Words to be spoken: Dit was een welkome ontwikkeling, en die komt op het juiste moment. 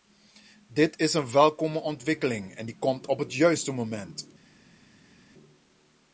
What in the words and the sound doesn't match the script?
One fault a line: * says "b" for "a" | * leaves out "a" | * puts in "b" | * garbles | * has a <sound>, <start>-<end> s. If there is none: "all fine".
* says "is" for "was"